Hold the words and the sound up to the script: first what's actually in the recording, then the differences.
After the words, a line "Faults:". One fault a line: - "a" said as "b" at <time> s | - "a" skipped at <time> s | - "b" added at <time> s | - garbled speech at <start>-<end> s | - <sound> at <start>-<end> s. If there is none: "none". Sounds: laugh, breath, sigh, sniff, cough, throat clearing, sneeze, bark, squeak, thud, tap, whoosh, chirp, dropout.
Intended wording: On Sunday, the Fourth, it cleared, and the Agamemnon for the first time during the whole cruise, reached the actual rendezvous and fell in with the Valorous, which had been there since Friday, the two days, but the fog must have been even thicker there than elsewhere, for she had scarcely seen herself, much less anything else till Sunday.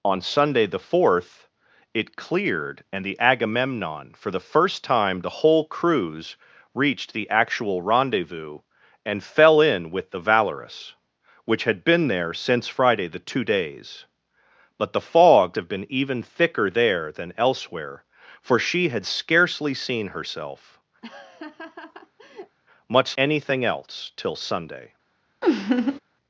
On Sunday, the Fourth, it cleared, and the Agamemnon for the first time the whole cruise, reached the actual rendezvous and fell in with the Valorous, which had been there since Friday, the two days, but the fog have been even thicker there than elsewhere, for she had scarcely seen herself, much anything else till Sunday.
Faults:
- "during" skipped at 5.2 s
- "must" skipped at 15.6 s
- laugh at 21.0-22.6 s
- "less" skipped at 23.1 s
- laugh at 25.4-26.0 s